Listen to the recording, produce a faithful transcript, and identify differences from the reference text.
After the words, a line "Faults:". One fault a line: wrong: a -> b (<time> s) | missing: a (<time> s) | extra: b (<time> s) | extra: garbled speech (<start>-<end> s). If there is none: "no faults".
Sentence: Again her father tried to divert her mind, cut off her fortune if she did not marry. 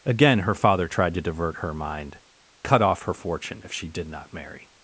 Again her father tried to divert her mind, cut off her fortune if she did not marry.
Faults:
no faults